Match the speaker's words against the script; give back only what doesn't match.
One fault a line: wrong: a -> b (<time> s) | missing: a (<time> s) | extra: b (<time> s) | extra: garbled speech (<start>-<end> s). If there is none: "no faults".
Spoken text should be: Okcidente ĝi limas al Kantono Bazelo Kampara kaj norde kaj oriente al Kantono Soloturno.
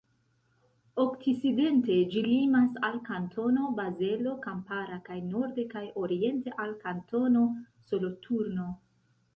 no faults